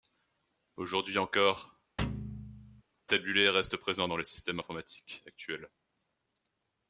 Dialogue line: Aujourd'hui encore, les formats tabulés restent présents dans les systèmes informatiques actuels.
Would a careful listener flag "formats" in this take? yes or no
yes